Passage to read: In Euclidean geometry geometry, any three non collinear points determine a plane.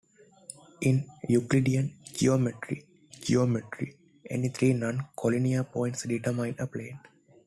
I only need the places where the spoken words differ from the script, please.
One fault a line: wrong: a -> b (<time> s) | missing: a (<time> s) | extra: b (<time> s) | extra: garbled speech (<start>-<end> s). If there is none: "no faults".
no faults